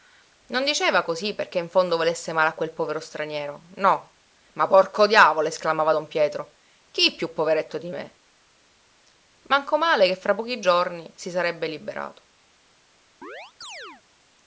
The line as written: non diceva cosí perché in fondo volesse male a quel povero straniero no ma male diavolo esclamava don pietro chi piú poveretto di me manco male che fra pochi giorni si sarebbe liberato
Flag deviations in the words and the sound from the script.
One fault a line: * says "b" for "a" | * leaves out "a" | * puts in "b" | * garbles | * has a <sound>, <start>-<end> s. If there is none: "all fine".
* says "porco" for "male"
* has a chirp, 13.2-14.0 s